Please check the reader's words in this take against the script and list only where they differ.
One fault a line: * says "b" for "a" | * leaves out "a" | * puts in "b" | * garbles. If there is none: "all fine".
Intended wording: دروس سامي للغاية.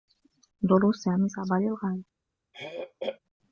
* puts in "صعبة"